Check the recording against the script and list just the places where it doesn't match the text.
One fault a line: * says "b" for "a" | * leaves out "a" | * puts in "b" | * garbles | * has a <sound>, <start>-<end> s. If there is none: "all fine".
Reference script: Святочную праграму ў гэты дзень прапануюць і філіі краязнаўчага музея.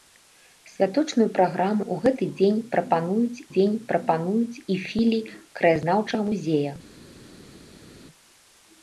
* puts in "дзень прапануюць"